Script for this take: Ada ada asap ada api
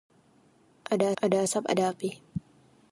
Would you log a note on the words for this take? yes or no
no